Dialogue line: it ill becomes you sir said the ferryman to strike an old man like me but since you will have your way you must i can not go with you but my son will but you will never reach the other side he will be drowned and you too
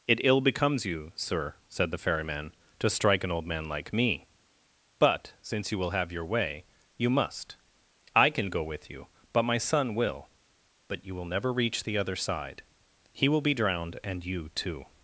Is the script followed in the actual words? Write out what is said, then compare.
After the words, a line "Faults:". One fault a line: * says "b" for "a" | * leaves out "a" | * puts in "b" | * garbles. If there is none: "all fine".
it ill becomes you sir said the ferryman to strike an old man like me but since you will have your way you must i can go with you but my son will but you will never reach the other side he will be drowned and you too
Faults:
* leaves out "not"